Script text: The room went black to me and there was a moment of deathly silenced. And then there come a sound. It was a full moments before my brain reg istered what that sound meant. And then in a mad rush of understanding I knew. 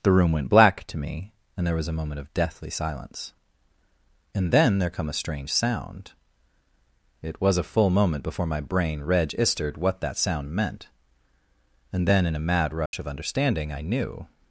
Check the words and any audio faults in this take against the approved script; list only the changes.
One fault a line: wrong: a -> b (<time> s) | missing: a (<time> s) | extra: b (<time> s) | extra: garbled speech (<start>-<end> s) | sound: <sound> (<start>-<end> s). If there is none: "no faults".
wrong: silenced -> silence (2.7 s)
extra: strange (5.1 s)
wrong: moments -> moment (7.9 s)
sound: dropout (12.9-12.9 s)